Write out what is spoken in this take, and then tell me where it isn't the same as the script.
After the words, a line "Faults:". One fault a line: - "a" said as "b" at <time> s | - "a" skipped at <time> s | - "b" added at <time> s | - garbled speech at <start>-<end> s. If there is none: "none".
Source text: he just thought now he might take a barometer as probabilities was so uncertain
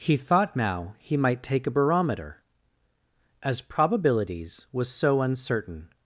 he thought now he might take a barometer as probabilities was so uncertain
Faults:
- "just" skipped at 0.2 s